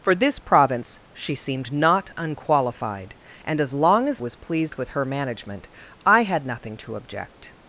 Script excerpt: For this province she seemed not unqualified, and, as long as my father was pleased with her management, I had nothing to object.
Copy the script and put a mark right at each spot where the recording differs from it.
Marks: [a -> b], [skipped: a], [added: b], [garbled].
For this province she seemed not unqualified, and, as long as [skipped: my father] was pleased with her management, I had nothing to object.